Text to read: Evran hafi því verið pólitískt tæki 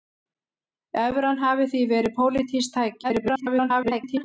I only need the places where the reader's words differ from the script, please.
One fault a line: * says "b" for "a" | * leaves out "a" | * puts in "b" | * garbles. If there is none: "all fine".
* garbles